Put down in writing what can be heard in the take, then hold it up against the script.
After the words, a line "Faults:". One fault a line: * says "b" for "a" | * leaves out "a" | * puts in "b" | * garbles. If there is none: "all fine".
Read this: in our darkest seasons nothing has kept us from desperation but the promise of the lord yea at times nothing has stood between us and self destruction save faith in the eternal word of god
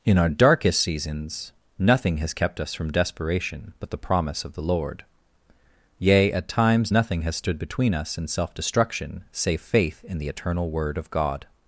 in our darkest seasons nothing has kept us from desperation but the promise of the lord yea at times nothing has stood between us and self destruction save faith in the eternal word of god
Faults:
all fine